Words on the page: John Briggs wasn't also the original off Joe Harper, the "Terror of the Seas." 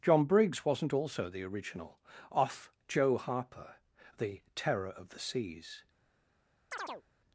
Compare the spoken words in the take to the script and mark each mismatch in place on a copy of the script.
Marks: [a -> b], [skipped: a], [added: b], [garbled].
John Briggs wasn't also the original off Joe Harper, the "Terror of the Seas."